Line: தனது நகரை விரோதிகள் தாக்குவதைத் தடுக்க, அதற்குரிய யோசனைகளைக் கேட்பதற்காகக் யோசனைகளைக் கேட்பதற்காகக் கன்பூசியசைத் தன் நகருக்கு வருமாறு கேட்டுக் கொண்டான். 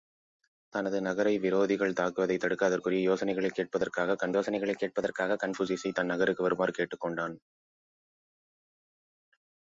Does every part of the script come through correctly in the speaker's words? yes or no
yes